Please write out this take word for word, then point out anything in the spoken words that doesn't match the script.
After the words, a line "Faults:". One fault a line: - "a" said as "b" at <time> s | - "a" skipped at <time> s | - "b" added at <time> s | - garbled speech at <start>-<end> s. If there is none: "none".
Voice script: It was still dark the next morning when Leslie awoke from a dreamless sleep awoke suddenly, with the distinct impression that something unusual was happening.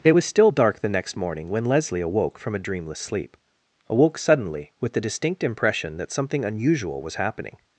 It was still dark the next morning when Leslie awoke from a dreamless sleep awoke suddenly, with the distinct impression that something unusual was happening.
Faults:
none